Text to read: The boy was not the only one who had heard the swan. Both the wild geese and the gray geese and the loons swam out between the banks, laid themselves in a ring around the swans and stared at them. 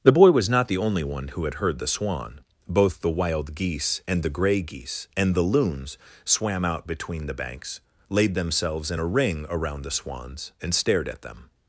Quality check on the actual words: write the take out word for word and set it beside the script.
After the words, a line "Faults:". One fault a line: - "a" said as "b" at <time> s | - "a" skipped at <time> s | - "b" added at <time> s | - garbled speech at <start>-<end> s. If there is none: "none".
The boy was not the only one who had heard the swan. Both the wild geese and the gray geese and the loons swam out between the banks, laid themselves in a ring around the swans and stared at them.
Faults:
none